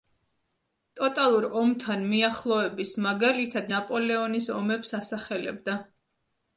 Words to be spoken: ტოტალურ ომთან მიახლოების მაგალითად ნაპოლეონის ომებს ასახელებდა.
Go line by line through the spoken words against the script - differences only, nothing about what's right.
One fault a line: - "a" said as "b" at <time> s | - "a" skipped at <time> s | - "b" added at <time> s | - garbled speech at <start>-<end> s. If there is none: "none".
none